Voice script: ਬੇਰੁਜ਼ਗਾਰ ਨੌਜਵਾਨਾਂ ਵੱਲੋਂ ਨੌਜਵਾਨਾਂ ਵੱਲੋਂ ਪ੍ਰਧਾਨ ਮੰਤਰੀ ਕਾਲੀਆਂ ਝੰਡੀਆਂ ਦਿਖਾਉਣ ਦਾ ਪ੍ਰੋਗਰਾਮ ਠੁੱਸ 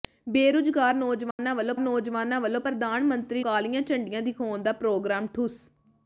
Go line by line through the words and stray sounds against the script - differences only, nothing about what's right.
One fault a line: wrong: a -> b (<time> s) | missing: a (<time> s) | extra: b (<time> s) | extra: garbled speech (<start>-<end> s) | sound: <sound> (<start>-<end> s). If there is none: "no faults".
sound: dropout (1.3-1.4 s)